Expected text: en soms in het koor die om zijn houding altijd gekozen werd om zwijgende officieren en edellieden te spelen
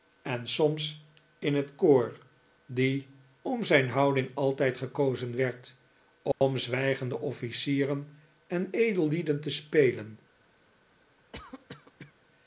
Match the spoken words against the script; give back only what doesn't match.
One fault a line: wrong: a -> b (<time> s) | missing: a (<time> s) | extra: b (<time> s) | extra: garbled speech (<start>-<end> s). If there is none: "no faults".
no faults